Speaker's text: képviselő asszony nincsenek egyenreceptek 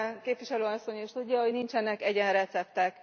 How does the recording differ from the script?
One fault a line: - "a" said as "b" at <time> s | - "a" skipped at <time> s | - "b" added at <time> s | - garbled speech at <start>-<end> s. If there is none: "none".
- "is tudja hogy" added at 1.0 s